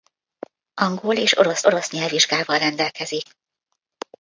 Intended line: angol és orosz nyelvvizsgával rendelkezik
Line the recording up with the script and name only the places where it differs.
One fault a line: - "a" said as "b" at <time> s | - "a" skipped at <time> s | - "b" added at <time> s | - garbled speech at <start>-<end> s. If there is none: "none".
- "orosz" added at 1.6 s